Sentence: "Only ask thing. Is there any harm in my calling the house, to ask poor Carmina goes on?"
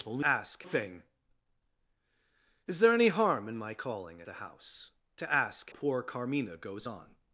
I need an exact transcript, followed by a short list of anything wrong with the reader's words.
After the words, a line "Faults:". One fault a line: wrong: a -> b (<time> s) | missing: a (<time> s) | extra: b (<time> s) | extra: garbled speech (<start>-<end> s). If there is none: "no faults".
"Only ask thing. Is there any harm in my calling the house, to ask poor Carmina goes on?"
Faults:
no faults